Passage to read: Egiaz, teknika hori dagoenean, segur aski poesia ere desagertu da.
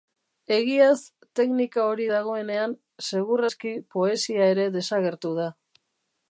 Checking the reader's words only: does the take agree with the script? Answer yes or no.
yes